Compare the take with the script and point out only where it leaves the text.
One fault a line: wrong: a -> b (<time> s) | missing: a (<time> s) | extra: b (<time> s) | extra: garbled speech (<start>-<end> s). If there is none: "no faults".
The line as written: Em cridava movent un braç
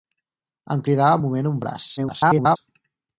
extra: garbled speech (2.0-2.6 s)